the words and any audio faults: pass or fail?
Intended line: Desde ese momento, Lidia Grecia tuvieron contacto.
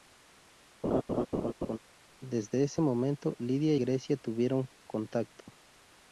fail